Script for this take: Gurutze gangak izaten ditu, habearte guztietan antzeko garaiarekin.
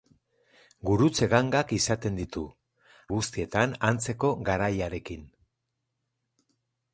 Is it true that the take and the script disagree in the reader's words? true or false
true